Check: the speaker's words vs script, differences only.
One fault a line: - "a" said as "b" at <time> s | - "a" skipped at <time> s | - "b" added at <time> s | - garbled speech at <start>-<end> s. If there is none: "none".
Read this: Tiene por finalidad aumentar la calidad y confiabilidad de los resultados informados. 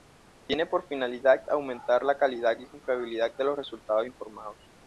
none